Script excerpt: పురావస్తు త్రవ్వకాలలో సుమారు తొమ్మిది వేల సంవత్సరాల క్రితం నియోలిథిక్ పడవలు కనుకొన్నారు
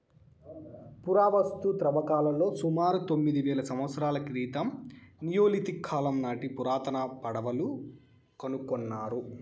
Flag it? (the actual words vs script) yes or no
yes